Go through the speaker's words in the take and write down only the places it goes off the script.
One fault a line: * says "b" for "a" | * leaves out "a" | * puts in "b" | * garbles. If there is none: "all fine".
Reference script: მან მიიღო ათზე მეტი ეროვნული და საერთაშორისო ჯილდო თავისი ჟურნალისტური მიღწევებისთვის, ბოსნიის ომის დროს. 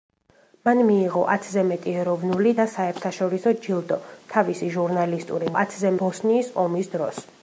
* says "ათზე" for "მიღწევებისთვის"